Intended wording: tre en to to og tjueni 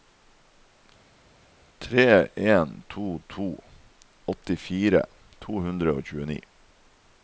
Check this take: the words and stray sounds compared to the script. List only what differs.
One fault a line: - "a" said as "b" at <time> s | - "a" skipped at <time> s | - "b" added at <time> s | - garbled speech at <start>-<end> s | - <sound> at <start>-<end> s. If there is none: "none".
- "åttifire to hundre" added at 4.3 s